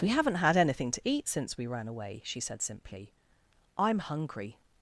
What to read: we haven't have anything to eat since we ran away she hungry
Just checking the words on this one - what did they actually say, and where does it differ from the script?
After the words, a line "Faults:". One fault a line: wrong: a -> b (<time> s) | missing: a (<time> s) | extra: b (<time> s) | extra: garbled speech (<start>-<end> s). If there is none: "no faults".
we haven't had anything to eat since we ran away she said simply i'm hungry
Faults:
wrong: have -> had (0.3 s)
extra: said simply i'm (2.4 s)